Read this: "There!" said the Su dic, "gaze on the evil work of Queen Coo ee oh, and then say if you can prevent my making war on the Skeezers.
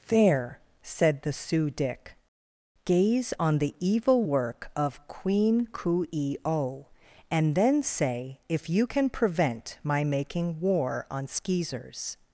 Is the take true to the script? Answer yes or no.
no